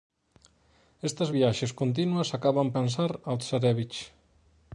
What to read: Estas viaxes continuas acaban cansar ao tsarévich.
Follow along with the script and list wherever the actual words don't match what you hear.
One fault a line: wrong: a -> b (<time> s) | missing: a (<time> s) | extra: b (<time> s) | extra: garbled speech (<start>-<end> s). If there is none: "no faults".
no faults